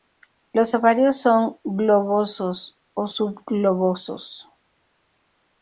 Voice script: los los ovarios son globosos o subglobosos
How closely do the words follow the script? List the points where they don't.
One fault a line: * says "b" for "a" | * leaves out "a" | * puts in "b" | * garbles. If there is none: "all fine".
* leaves out "los"